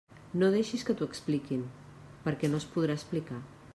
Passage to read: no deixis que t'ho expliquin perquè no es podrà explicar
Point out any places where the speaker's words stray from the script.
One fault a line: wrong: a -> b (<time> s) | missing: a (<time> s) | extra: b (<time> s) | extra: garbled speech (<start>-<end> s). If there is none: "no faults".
no faults